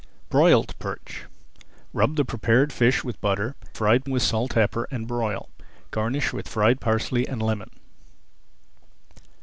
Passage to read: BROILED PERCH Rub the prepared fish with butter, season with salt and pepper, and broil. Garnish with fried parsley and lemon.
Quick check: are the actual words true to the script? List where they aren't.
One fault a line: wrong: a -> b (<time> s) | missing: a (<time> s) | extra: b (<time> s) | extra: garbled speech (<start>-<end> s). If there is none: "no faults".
wrong: season -> fried (3.7 s)
missing: and (4.5 s)